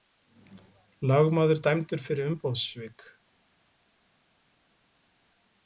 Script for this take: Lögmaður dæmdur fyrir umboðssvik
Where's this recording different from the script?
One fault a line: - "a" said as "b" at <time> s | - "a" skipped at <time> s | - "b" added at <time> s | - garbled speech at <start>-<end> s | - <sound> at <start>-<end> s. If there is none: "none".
none